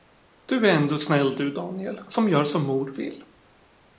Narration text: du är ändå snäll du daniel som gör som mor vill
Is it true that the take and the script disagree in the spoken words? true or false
false